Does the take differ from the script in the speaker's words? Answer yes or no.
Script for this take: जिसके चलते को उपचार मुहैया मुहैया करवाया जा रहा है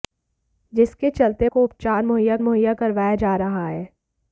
no